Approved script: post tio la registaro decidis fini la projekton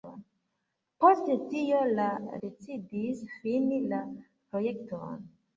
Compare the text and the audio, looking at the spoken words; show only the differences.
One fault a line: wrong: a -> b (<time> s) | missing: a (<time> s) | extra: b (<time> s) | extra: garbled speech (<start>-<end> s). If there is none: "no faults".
missing: registaro (2.1 s)